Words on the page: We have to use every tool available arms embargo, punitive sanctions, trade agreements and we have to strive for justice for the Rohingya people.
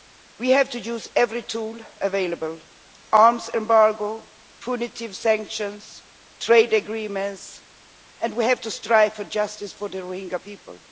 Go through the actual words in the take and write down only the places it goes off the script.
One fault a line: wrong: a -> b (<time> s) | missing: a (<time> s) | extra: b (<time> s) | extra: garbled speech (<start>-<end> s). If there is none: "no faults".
no faults